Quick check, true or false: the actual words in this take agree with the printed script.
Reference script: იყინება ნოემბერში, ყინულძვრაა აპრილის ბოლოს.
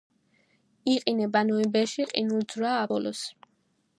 false